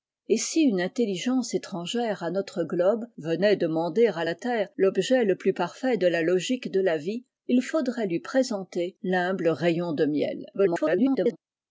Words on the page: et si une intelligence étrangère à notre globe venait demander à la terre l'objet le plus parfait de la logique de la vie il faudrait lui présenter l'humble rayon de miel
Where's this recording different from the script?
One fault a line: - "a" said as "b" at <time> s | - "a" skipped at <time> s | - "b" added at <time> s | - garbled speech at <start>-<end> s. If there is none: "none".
- garbled speech at 10.5-11.4 s